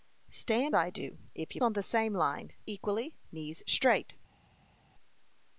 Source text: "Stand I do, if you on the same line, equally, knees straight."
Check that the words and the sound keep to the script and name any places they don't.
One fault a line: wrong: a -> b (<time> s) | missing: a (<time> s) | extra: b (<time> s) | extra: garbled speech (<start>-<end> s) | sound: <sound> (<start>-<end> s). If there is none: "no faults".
no faults